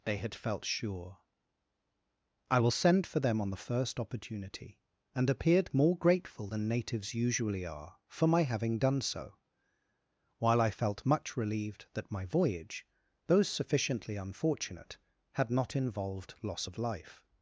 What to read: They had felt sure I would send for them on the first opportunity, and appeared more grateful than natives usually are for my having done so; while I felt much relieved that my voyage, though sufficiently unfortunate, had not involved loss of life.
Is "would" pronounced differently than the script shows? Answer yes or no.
yes